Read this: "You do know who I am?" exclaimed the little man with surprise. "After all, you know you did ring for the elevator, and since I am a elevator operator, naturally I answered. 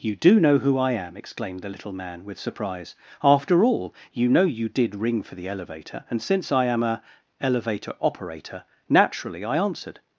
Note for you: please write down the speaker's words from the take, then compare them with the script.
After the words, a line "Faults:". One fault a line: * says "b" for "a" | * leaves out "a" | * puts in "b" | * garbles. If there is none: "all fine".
"You do know who I am?" exclaimed the little man with surprise. "After all, you know you did ring for the elevator, and since I am a elevator operator, naturally I answered.
Faults:
all fine